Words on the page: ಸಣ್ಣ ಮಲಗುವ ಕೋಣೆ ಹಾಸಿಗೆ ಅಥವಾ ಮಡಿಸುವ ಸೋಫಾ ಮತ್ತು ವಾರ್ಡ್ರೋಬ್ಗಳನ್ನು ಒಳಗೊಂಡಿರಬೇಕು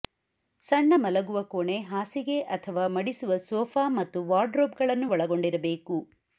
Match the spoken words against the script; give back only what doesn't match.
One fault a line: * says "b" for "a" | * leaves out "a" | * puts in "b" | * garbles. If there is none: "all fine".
all fine